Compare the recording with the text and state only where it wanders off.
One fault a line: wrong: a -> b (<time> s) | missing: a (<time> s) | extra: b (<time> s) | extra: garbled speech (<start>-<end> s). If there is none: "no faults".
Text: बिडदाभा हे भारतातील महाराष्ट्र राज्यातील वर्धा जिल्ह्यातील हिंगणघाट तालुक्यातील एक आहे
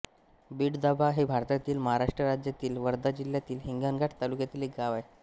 extra: गाव (4.8 s)